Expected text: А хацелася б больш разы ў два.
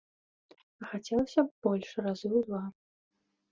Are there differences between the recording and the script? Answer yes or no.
no